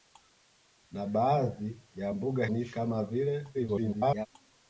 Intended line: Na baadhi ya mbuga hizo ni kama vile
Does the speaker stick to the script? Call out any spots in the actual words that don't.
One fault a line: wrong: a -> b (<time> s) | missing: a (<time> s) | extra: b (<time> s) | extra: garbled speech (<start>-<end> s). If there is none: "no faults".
missing: hizo (2.5 s)
extra: garbled speech (3.5-4.3 s)